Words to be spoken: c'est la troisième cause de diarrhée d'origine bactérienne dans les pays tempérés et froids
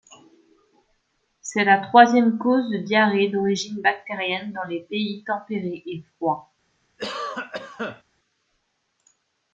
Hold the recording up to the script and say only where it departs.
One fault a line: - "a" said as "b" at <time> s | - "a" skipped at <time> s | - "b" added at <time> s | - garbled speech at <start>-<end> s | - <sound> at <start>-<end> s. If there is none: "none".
- cough at 7.0-8.0 s